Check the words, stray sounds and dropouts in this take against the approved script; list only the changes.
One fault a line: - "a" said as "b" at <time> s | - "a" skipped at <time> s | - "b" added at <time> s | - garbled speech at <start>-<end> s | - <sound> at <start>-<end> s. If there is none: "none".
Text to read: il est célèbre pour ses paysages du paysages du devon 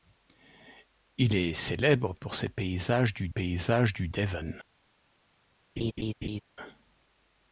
- laugh at 5.8-6.4 s